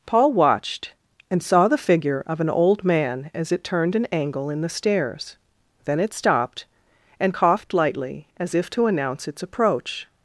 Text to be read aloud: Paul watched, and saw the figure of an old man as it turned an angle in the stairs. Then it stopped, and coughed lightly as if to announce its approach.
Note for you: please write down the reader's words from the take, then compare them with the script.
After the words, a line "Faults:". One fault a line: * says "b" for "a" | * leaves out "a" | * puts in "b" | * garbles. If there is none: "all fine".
Paul watched, and saw the figure of an old man as it turned an angle in the stairs. Then it stopped, and coughed lightly as if to announce its approach.
Faults:
all fine